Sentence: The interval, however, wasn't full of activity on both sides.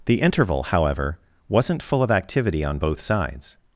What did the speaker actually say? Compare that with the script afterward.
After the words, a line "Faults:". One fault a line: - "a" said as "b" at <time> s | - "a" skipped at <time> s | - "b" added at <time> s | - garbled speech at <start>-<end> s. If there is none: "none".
The interval, however, wasn't full of activity on both sides.
Faults:
none